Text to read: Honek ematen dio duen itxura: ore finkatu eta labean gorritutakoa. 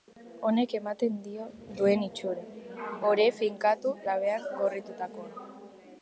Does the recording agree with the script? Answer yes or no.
no